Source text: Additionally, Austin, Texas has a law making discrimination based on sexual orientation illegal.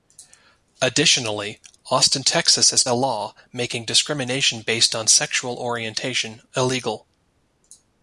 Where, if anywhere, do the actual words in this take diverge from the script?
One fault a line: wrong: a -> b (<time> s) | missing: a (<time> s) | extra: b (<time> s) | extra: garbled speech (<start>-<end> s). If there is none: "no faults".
no faults